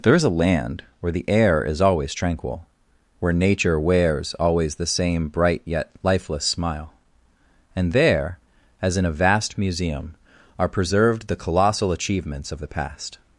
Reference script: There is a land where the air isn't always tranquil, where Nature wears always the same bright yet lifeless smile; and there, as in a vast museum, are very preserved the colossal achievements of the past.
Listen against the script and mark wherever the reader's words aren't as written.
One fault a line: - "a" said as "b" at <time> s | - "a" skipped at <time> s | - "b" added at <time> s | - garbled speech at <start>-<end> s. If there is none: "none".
- "isn't" said as "is" at 1.6 s
- "very" skipped at 10.7 s